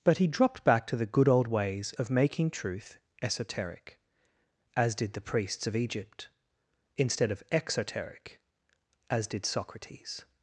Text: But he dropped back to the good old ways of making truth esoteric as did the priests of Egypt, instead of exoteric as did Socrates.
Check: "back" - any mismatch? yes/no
no